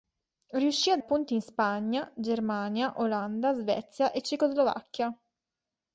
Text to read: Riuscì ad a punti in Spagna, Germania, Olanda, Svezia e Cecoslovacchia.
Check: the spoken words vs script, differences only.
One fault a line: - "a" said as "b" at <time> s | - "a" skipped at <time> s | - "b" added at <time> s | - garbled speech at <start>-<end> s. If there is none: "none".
none